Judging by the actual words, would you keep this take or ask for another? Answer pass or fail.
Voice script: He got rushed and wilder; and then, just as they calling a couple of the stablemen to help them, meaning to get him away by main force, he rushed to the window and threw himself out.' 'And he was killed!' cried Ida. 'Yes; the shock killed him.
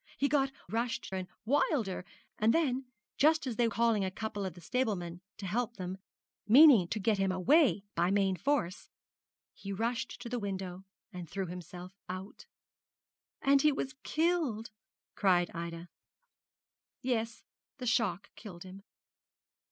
pass